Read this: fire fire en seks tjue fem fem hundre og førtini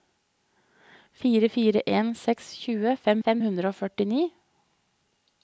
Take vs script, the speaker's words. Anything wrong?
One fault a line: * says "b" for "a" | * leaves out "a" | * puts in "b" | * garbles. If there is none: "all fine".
all fine